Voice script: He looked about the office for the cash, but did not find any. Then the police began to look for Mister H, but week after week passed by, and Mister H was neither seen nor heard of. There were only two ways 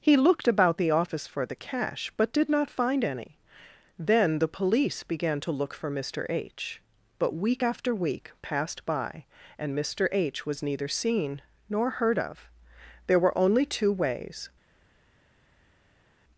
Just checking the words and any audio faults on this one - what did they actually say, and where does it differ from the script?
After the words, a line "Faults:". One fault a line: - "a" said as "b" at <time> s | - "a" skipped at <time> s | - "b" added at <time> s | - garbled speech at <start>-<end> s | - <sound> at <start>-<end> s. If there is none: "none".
He looked about the office for the cash, but did not find any. Then the police began to look for Mister H, but week after week passed by, and Mister H was neither seen nor heard of. There were only two ways
Faults:
none